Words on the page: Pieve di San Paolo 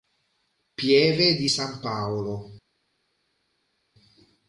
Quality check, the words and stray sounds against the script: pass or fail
pass